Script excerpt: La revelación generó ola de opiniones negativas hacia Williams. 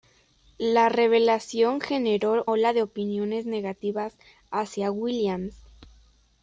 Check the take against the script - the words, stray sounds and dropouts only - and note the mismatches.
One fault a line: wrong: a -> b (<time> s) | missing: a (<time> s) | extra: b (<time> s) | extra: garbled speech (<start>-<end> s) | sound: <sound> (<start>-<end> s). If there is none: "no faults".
no faults